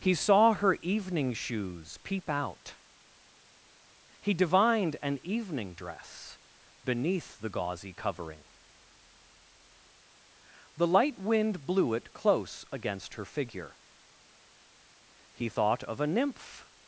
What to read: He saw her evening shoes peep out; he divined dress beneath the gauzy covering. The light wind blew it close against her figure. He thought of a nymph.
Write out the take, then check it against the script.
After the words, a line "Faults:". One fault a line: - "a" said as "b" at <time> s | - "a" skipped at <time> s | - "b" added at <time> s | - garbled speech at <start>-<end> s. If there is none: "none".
He saw her evening shoes peep out; he divined an evening dress beneath the gauzy covering. The light wind blew it close against her figure. He thought of a nymph.
Faults:
- "an evening" added at 5.0 s